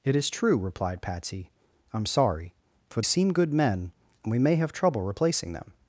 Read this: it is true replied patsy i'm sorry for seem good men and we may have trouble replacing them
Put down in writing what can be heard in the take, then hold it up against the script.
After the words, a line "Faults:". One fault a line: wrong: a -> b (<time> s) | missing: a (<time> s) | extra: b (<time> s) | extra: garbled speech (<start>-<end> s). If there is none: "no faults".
it is true replied patsy i'm sorry for seem good men and we may have trouble replacing them
Faults:
no faults